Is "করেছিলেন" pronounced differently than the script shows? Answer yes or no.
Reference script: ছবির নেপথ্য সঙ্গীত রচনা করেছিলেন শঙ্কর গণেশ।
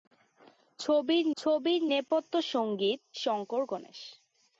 yes